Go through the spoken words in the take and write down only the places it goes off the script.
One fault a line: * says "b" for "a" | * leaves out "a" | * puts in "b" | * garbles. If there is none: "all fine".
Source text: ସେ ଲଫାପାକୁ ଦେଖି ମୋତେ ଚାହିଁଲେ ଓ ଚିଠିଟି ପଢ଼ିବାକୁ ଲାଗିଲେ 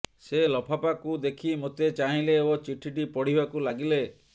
all fine